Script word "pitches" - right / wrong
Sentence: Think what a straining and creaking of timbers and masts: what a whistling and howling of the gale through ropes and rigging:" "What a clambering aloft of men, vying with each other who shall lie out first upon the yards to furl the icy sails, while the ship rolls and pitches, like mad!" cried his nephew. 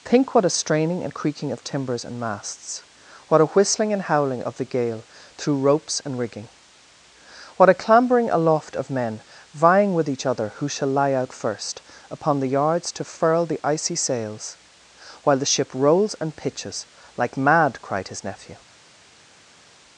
right